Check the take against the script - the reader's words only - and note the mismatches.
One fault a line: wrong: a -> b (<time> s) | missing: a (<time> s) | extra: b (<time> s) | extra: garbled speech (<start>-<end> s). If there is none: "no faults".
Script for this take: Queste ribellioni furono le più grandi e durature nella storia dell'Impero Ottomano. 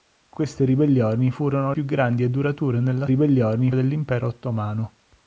missing: le (1.7 s)
wrong: storia -> ribellioni (3.1 s)